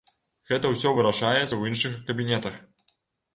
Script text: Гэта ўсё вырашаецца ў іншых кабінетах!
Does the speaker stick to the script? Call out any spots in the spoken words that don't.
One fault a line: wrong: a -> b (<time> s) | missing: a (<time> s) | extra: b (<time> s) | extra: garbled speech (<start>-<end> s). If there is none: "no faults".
no faults